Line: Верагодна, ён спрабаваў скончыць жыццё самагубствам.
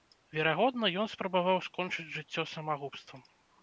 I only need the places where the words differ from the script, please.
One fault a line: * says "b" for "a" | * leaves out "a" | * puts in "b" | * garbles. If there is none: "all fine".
all fine